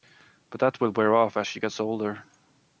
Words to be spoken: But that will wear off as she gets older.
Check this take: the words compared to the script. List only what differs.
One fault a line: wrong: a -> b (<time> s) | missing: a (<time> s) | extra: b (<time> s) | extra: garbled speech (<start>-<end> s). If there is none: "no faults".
no faults